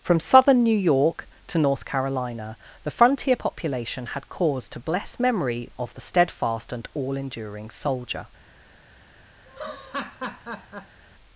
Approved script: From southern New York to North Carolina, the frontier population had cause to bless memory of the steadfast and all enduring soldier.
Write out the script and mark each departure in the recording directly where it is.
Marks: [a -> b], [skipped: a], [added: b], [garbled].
From southern New York to North Carolina, the frontier population had cause to bless memory of the steadfast and all enduring soldier.